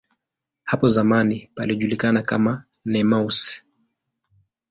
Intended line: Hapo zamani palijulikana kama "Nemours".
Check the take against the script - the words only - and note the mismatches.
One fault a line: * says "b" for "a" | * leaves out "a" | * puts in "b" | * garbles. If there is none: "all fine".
all fine